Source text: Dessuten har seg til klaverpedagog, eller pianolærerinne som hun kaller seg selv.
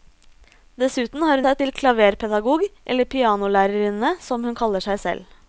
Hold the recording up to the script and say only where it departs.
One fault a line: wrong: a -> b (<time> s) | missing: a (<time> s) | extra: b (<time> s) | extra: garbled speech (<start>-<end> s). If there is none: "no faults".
no faults